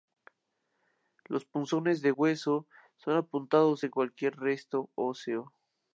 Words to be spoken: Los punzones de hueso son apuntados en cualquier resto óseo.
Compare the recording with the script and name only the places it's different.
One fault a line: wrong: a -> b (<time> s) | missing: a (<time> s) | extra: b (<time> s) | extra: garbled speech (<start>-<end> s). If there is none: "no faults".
no faults